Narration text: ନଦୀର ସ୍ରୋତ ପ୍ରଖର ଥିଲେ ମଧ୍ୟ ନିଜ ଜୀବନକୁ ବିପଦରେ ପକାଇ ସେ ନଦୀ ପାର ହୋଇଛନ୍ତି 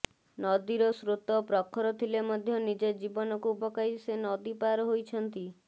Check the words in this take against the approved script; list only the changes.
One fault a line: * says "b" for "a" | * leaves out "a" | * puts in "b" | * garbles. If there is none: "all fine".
* leaves out "ବିପଦରେ"